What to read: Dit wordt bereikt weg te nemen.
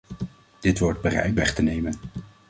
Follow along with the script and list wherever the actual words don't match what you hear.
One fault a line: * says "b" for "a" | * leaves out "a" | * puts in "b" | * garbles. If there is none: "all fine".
all fine